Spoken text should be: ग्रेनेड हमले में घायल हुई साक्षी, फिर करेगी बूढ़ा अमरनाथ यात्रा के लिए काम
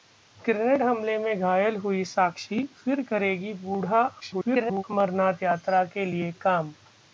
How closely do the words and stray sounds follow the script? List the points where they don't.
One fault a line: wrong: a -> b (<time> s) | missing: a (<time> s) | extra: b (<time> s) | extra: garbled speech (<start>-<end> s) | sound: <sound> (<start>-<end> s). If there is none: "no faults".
extra: garbled speech (4.2-4.8 s)